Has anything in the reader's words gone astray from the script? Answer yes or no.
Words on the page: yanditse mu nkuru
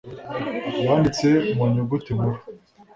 yes